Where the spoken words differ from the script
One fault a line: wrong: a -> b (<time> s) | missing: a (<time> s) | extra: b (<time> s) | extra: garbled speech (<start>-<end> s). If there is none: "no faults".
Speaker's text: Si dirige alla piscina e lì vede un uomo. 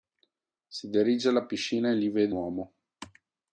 missing: un (2.4 s)